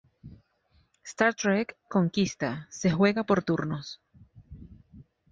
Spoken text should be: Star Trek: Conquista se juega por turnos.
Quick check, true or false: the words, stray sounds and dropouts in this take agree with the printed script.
true